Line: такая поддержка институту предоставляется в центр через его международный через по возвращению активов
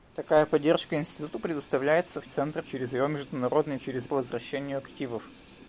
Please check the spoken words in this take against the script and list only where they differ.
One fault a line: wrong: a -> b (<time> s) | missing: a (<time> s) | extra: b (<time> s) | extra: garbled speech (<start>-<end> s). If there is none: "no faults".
no faults